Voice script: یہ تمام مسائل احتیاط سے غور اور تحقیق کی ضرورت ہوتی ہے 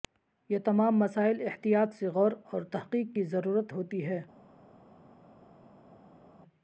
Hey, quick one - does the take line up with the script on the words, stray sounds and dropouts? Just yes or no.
yes